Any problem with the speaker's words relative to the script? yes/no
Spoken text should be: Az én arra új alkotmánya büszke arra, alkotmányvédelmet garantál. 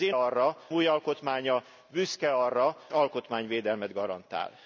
no